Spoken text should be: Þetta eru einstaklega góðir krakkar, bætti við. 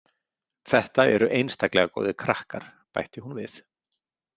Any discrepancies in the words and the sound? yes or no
yes